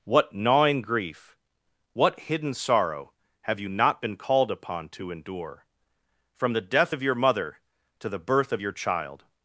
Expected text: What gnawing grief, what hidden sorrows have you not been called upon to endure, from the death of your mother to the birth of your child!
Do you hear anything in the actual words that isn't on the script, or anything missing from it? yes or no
yes